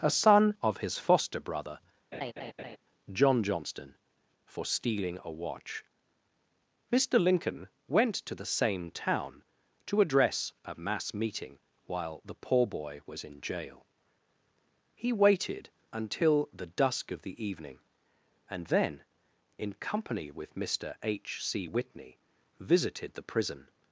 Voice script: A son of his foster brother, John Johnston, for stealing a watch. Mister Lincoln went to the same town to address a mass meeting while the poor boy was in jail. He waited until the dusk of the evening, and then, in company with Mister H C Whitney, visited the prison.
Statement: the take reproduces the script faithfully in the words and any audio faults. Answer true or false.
false